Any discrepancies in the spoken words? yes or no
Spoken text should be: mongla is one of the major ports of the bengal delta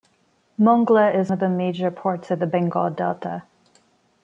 yes